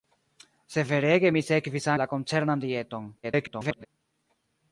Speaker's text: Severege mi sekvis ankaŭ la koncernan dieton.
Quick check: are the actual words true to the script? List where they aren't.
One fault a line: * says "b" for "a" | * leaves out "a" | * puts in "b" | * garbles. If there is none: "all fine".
* leaves out "ankaŭ"
* garbles